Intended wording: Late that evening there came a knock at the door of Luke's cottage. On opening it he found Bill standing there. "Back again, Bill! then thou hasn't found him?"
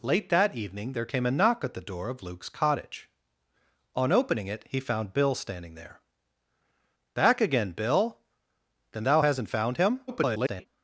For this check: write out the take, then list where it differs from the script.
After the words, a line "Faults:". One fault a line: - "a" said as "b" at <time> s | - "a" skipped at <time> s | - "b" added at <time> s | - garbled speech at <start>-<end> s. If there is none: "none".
Late that evening there came a knock at the door of Luke's cottage. On opening it he found Bill standing there. "Back again, Bill! then thou hasn't found him?" [garbled]
Faults:
- garbled speech at 10.1-10.7 s